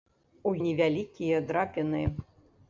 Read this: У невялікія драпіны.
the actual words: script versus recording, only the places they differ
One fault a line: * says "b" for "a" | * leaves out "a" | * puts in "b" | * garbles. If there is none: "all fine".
all fine